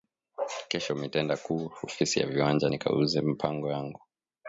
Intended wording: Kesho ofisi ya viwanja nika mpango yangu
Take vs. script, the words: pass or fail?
fail